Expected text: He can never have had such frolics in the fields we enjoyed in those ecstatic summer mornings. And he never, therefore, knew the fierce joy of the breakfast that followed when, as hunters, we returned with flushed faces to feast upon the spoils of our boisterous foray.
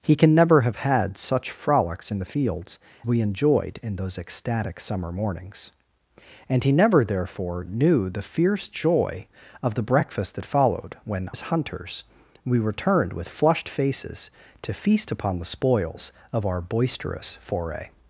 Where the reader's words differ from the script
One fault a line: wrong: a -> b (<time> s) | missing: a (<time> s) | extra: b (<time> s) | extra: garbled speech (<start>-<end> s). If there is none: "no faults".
no faults